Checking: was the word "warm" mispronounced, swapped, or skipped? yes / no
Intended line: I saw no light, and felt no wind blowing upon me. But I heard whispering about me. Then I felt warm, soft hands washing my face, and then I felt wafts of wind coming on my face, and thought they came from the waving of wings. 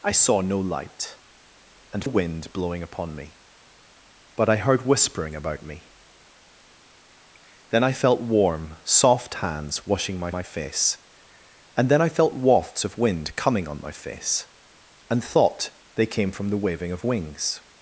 no